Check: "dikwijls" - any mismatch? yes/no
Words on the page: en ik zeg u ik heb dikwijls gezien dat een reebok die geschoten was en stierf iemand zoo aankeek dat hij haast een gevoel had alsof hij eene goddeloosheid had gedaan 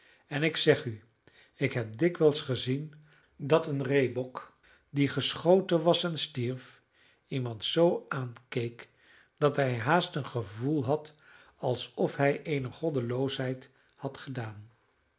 no